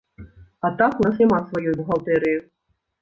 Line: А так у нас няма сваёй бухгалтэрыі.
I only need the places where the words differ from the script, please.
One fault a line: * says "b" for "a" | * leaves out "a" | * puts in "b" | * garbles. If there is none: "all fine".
all fine